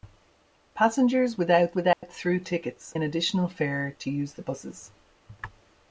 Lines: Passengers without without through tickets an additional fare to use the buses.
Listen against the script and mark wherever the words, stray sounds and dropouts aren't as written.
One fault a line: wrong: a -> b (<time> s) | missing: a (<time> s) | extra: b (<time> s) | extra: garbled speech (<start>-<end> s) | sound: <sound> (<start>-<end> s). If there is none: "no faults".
sound: dropout (1.9-2.0 s)